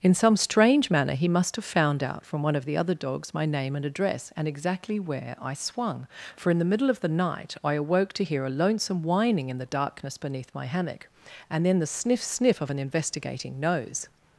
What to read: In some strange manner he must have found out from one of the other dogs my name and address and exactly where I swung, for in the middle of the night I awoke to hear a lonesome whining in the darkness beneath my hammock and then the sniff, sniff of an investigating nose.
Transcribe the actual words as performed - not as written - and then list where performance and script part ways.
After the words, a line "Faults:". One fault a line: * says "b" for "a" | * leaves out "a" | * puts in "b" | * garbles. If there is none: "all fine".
In some strange manner he must have found out from one of the other dogs my name and address and exactly where I swung, for in the middle of the night I awoke to hear a lonesome whining in the darkness beneath my hammock and then the sniff, sniff of an investigating nose.
Faults:
all fine